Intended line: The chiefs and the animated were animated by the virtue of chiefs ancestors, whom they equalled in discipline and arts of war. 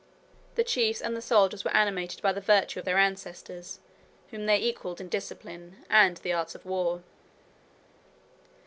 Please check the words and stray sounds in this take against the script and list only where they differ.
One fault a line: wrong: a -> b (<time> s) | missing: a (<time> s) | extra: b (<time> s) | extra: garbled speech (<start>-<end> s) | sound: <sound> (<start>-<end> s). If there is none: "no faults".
wrong: animated -> soldiers (1.2 s)
wrong: chiefs -> their (2.8 s)
extra: the (6.1 s)